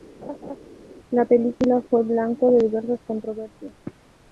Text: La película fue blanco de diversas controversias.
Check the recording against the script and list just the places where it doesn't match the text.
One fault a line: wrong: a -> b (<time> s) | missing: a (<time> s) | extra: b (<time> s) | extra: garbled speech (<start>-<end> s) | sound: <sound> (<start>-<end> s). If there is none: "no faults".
sound: laugh (0.2-0.6 s)